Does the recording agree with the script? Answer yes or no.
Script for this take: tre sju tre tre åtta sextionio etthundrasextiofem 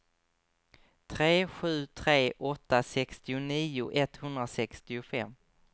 no